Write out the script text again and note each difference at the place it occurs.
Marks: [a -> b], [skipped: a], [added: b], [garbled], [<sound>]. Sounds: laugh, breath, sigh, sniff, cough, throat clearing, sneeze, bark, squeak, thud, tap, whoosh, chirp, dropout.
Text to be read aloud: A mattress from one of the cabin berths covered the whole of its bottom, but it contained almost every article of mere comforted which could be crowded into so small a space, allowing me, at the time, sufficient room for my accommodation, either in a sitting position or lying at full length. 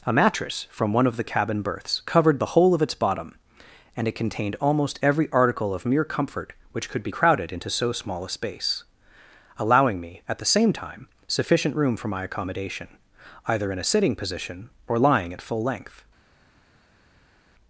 A mattress from one of the cabin berths covered the whole of its bottom, [but -> and] it contained almost every article of mere [comforted -> comfort] which could be crowded into so small a space, allowing me, at the [added: same] time, sufficient room for my accommodation, either in a sitting position or lying at full length.